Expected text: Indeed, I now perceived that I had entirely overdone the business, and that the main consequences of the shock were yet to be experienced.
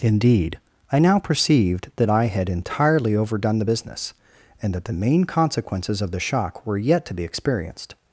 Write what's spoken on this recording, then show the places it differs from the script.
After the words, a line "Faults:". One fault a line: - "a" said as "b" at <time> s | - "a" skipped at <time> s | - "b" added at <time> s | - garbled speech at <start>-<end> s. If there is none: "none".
Indeed, I now perceived that I had entirely overdone the business, and that the main consequences of the shock were yet to be experienced.
Faults:
none